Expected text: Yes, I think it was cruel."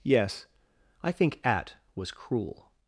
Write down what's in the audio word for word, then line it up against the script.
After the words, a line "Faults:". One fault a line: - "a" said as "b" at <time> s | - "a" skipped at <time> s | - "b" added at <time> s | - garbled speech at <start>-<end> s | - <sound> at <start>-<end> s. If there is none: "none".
Yes, I think at was cruel."
Faults:
- "it" said as "at" at 1.4 s